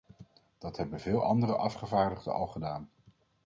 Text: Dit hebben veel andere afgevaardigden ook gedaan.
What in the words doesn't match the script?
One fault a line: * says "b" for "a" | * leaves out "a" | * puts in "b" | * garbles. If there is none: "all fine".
* says "Dat" for "Dit"
* says "al" for "ook"